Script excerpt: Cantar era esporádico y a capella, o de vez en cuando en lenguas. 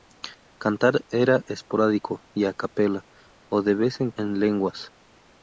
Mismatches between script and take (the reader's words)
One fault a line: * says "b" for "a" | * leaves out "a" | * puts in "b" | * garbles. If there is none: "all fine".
* leaves out "cuando"